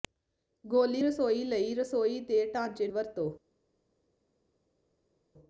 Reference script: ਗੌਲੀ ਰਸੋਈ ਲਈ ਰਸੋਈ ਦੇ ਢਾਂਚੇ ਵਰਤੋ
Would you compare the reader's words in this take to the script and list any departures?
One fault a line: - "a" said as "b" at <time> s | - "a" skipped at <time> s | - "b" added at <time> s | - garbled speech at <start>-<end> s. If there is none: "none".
none